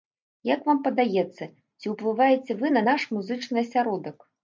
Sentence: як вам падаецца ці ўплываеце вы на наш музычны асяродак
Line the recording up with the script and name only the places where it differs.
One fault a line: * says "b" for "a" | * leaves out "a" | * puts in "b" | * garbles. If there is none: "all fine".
all fine